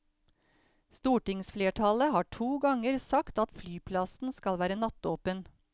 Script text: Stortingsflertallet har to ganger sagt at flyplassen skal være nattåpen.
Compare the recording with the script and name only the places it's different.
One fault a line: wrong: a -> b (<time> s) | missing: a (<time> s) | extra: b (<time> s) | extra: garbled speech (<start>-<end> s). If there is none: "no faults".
no faults